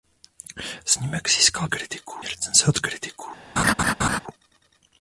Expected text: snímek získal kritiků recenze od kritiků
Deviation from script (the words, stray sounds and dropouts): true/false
true